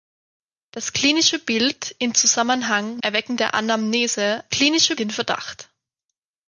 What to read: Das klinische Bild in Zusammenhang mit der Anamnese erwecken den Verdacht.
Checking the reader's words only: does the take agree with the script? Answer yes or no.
no